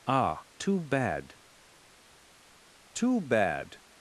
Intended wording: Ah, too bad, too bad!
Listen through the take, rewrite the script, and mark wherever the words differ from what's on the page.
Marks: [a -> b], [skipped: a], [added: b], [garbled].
Ah, too bad, too bad!